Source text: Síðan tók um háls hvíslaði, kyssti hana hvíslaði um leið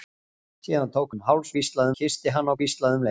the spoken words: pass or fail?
pass